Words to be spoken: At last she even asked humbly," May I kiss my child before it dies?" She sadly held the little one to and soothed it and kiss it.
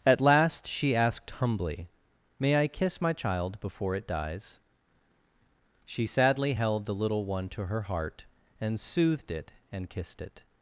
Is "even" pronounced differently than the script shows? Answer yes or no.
yes